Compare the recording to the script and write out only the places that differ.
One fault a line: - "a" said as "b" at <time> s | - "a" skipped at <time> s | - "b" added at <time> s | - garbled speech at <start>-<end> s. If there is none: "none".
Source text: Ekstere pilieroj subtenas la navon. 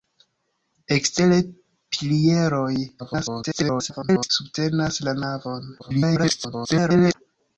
- garbled speech at 3.0-4.3 s
- garbled speech at 5.8-7.1 s